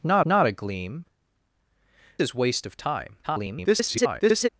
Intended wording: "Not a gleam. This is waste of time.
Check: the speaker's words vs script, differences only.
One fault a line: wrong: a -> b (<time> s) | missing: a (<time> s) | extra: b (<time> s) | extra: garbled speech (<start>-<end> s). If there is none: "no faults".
extra: not (0.2 s)
missing: This (1.0 s)
extra: garbled speech (3.2-4.5 s)